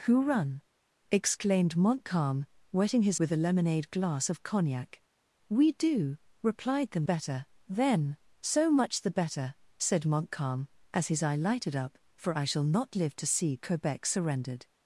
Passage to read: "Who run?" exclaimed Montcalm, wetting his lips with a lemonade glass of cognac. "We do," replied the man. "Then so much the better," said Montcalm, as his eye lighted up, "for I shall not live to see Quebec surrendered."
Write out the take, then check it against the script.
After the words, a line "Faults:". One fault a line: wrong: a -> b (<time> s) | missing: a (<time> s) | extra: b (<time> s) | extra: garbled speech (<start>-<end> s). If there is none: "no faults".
"Who run?" exclaimed Montcalm, wetting his with a lemonade glass of cognac. "We do," replied the better. "Then so much the better," said Montcalm, as his eye lighted up, "for I shall not live to see Quebec surrendered."
Faults:
missing: lips (3.2 s)
wrong: man -> better (7.0 s)